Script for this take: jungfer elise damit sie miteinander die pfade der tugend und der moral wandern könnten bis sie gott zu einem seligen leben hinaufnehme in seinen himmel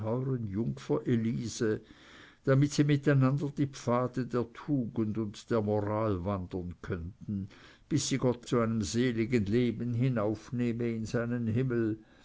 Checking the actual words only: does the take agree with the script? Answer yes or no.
yes